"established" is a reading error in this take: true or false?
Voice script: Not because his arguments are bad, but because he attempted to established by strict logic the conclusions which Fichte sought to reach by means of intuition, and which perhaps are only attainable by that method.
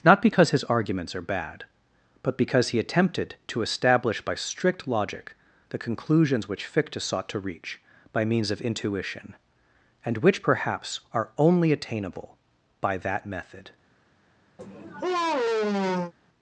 true